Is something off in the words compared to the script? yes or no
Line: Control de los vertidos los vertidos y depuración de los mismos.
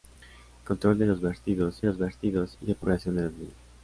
no